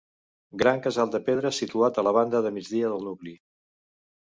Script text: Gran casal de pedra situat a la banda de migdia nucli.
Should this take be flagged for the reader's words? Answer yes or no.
yes